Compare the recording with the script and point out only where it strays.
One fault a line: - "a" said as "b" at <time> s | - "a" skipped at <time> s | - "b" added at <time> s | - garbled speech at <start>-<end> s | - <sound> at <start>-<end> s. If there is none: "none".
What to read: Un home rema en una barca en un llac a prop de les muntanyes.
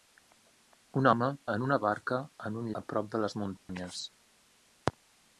- "rema" skipped at 1.3 s
- "llac" skipped at 2.7 s
- dropout at 3.6-3.7 s